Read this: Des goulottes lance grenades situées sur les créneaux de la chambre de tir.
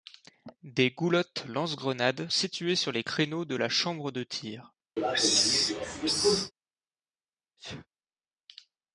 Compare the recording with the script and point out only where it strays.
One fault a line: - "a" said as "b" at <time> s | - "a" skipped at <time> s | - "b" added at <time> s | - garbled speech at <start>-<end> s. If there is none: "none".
none